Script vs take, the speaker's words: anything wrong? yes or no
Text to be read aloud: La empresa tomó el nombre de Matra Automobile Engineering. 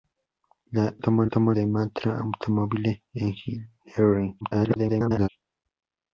yes